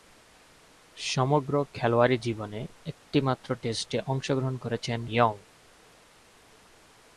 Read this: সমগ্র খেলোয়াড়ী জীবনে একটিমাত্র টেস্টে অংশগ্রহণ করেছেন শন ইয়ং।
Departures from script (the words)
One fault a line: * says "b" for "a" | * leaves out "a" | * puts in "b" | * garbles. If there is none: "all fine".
* leaves out "শন"